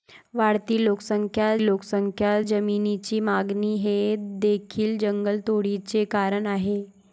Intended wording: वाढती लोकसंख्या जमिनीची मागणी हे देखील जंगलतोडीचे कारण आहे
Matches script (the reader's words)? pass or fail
fail